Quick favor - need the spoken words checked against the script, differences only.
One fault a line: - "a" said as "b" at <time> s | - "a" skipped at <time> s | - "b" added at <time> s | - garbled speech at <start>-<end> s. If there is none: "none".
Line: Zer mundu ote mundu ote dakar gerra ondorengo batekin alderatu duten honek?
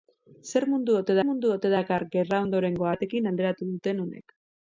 none